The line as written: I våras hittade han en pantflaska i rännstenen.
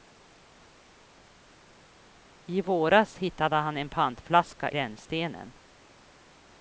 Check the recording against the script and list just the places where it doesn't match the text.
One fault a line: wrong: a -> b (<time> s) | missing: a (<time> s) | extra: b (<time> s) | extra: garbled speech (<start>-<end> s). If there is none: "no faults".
missing: i (4.7 s)